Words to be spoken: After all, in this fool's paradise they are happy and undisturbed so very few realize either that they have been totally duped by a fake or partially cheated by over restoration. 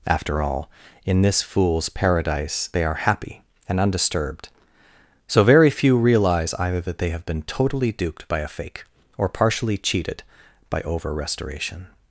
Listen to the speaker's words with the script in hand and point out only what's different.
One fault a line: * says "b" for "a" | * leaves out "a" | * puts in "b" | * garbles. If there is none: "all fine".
all fine